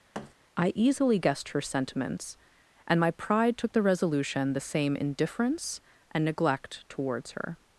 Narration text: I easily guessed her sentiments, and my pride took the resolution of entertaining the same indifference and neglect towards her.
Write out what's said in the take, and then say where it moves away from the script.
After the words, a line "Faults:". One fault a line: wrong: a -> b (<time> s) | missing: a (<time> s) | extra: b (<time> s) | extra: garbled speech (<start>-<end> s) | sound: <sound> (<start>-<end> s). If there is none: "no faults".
I easily guessed her sentiments, and my pride took the resolution the same indifference and neglect towards her.
Faults:
sound: thud (0.1-0.3 s)
missing: of entertaining (4.5 s)